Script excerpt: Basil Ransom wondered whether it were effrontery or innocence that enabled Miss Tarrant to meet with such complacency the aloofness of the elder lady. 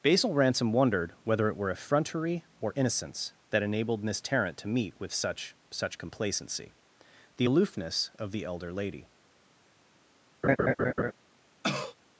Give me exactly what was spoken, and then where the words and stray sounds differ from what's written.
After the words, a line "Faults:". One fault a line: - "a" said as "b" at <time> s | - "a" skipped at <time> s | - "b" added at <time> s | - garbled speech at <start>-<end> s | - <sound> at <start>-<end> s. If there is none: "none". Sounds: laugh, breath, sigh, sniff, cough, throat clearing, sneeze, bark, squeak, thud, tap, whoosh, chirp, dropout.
Basil Ransom wondered whether it were effrontery or innocence that enabled Miss Tarrant to meet with such such complacency the aloofness of the elder lady.
Faults:
- "such" added at 5.7 s
- laugh at 10.4-11.1 s
- cough at 11.6-11.9 s